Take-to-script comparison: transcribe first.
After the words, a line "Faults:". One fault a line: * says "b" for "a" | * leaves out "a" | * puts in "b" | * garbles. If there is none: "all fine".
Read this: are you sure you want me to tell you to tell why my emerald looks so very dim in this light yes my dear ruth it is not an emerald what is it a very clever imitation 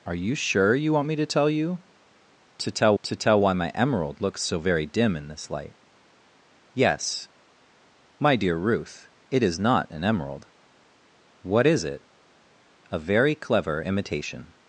are you sure you want me to tell you to tell to tell why my emerald looks so very dim in this light yes my dear ruth it is not an emerald what is it a very clever imitation
Faults:
* puts in "to tell"